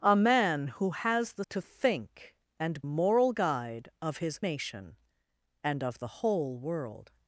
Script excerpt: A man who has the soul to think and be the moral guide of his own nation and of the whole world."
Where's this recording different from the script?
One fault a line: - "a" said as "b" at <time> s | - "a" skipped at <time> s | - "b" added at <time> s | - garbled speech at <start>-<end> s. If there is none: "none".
- "soul" skipped at 1.4 s
- "be the" skipped at 2.8 s
- "own" skipped at 4.4 s